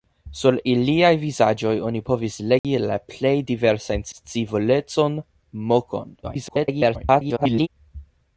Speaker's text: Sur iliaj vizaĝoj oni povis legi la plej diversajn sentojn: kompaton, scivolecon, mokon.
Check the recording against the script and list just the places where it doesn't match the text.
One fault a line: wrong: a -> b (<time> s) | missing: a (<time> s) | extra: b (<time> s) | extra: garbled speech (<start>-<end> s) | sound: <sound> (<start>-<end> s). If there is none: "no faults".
sound: dropout (2.6-2.6 s)
missing: sentojn kompaton (4.1 s)
extra: garbled speech (6.2-7.7 s)